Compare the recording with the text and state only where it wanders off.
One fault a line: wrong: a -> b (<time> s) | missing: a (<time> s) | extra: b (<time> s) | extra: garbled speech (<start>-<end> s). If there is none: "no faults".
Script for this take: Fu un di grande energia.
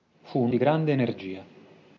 no faults